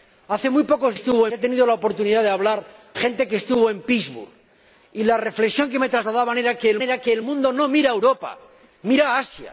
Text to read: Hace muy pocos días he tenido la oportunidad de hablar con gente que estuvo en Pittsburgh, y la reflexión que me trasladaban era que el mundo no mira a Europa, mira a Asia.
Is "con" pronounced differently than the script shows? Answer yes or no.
yes